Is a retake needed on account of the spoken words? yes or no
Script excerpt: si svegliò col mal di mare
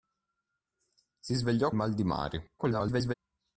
yes